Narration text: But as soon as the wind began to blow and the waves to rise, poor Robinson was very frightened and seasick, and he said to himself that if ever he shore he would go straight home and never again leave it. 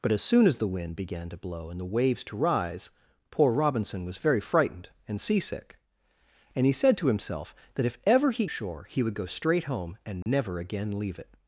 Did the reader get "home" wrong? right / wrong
right